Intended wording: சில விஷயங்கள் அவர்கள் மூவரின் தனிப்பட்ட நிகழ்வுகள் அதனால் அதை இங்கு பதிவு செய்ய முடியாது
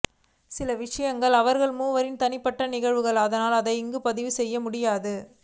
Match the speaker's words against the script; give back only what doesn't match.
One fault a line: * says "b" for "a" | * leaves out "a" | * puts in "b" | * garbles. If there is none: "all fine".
all fine